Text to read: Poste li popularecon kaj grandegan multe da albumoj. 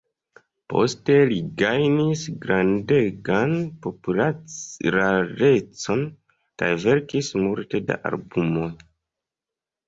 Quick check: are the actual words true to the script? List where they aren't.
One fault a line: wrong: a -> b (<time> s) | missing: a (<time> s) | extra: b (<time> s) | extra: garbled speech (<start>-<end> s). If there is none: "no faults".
extra: gajnis grandegan (1.6 s)
wrong: grandegan -> verkis (6.9 s)